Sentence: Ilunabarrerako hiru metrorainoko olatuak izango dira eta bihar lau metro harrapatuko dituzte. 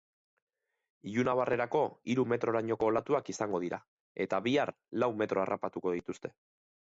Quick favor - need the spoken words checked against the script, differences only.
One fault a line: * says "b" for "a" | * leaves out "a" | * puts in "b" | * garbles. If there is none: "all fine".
all fine